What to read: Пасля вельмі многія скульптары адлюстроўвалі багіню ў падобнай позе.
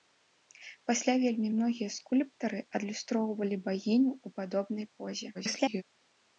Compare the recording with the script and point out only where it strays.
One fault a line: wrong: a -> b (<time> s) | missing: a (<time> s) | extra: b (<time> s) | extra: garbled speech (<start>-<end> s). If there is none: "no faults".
extra: garbled speech (5.3-5.8 s)